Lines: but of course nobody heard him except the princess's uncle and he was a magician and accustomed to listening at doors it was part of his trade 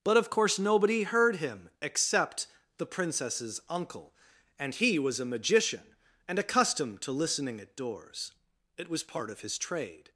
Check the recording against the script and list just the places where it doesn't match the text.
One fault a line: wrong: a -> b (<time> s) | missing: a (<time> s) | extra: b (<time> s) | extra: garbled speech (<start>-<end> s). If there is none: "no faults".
no faults